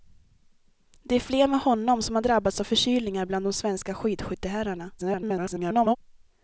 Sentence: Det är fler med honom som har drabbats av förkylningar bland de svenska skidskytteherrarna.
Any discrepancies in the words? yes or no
yes